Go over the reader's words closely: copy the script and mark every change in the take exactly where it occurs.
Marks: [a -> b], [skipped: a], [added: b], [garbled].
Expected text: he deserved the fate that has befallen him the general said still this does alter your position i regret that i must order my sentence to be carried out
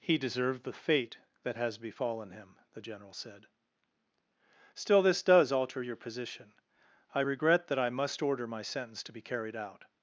he deserved the fate that has befallen him the general said still this does alter your position i regret that i must order my sentence to be carried out